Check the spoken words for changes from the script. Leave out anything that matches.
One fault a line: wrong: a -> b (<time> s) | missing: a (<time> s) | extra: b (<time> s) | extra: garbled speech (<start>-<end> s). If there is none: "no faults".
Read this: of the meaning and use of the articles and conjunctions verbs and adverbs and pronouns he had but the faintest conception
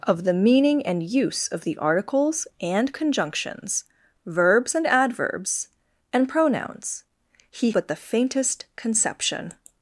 missing: had (7.7 s)